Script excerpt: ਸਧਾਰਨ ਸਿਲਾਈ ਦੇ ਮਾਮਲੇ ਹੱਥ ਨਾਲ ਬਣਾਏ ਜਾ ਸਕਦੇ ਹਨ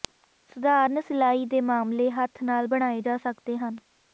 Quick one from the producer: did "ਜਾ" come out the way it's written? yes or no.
yes